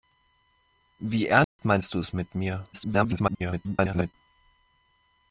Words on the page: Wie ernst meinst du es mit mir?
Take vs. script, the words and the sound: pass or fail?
fail